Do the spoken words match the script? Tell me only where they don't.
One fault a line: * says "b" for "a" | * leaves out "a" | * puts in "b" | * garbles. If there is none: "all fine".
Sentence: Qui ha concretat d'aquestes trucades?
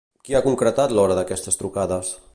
* puts in "l'hora"